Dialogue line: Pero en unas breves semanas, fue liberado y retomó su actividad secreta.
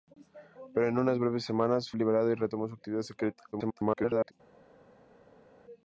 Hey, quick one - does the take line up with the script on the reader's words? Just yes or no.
no